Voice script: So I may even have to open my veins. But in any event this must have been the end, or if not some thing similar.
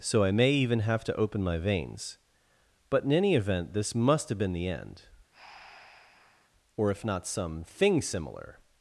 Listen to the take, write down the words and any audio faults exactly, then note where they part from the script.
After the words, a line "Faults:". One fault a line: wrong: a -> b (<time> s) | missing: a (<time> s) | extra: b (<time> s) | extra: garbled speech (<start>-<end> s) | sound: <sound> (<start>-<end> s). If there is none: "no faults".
So I may even have to open my veins. But in any event this must have been the end, or if not some thing similar.
Faults:
sound: breath (5.3-6.5 s)